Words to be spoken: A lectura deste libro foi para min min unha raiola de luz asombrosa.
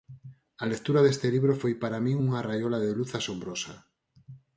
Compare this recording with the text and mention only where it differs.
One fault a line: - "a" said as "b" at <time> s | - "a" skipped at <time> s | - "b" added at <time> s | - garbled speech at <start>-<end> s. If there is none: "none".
- "min" skipped at 2.2 s